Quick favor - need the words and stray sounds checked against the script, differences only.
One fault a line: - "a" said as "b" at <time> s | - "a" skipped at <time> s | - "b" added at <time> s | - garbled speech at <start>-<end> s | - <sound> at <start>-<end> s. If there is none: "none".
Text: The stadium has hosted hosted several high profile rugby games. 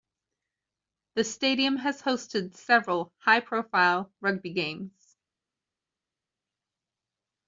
- "hosted" skipped at 2.5 s